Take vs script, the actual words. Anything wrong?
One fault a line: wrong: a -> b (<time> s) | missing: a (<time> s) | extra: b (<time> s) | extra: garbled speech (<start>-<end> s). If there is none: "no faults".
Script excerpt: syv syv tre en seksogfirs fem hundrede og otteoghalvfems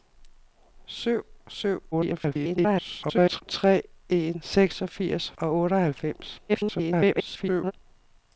extra: garbled speech (1.9-3.4 s)
missing: fem hundrede (5.3 s)
extra: garbled speech (6.5-7.7 s)